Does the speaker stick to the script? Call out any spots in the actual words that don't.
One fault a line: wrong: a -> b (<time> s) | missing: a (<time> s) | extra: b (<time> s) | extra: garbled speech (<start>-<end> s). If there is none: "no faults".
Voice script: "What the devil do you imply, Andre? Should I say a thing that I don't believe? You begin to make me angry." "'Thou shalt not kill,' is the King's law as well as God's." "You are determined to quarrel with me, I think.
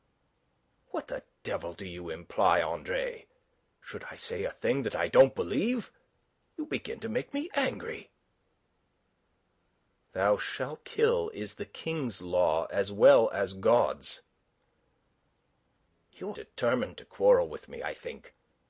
missing: not (10.8 s)
missing: are (16.3 s)